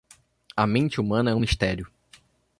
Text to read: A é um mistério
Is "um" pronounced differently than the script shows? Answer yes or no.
no